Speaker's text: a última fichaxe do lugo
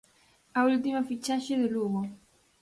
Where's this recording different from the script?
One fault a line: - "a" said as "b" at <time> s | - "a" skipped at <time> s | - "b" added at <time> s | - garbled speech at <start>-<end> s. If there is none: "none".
none